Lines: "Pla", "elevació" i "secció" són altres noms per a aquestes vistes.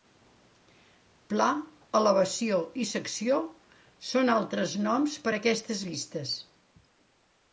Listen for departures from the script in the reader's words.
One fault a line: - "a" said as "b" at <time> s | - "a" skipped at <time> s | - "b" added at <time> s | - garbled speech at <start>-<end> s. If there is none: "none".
none